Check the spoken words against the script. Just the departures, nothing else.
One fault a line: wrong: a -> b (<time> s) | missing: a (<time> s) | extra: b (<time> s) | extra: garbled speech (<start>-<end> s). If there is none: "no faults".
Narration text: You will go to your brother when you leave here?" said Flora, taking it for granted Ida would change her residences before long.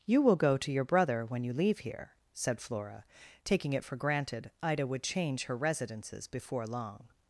no faults